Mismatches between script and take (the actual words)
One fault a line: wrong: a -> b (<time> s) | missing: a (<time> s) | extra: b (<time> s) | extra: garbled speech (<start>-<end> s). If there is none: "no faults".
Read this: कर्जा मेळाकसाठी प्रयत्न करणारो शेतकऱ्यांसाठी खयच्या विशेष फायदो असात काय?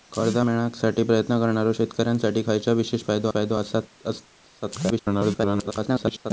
extra: फायदो (3.3 s)
extra: garbled speech (4.9-6.3 s)